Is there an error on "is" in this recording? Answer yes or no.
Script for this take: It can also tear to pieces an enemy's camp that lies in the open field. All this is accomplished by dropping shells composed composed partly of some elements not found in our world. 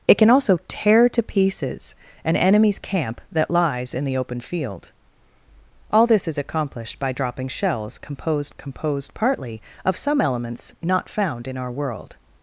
no